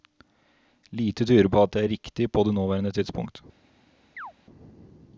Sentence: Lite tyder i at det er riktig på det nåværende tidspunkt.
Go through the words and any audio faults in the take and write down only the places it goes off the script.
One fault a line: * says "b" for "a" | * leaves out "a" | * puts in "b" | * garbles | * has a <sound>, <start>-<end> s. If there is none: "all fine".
* says "på" for "i"
* has a chirp, 4.2-4.3 s